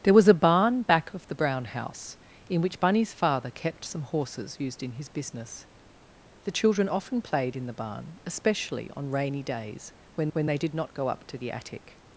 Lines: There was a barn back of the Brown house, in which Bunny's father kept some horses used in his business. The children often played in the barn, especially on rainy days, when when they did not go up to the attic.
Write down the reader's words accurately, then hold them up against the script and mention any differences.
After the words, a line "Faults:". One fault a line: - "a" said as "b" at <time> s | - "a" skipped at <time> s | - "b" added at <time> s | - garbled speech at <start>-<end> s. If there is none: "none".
There was a barn back of the Brown house, in which Bunny's father kept some horses used in his business. The children often played in the barn, especially on rainy days, when when they did not go up to the attic.
Faults:
none